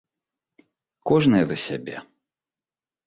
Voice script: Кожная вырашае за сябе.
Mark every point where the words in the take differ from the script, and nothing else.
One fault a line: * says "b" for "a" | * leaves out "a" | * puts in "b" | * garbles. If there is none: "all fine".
* leaves out "вырашае"